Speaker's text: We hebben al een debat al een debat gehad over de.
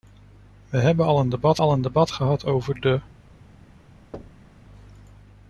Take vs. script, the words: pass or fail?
pass